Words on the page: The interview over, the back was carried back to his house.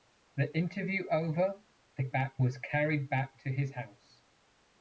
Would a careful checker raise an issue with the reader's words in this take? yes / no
no